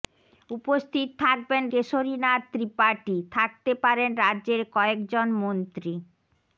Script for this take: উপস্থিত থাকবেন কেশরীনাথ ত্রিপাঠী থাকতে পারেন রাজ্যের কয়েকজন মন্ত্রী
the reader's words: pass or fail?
pass